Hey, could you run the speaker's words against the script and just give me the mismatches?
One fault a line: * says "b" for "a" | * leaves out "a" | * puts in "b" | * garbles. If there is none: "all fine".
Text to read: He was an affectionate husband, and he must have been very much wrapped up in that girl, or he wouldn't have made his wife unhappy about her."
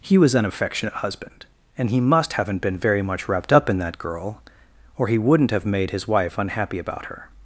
* says "haven't" for "have"